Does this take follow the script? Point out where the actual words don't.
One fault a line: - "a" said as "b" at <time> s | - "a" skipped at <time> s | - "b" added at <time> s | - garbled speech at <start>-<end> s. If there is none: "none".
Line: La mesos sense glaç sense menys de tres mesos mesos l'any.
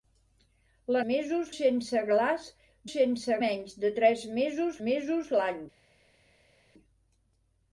none